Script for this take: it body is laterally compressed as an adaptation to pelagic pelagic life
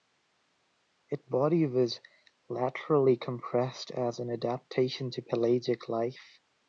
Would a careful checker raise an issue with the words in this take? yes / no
yes